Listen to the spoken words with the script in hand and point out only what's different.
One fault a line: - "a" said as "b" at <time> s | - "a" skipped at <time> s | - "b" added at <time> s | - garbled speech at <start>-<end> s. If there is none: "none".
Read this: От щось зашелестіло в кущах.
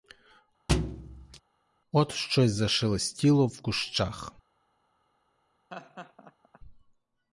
none